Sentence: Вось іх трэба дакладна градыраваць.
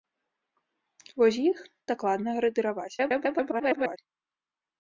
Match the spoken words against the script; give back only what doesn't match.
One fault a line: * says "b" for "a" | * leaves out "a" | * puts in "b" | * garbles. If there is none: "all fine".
* leaves out "трэба"
* garbles